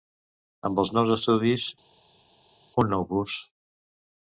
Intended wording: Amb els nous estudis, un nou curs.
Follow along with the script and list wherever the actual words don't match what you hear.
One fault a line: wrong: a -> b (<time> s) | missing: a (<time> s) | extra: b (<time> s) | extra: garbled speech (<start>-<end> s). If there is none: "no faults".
no faults